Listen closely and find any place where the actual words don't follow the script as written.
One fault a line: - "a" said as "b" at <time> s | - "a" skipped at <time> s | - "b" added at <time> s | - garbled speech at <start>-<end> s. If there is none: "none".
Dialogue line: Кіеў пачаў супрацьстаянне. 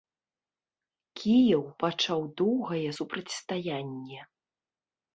- "доўгае" added at 2.4 s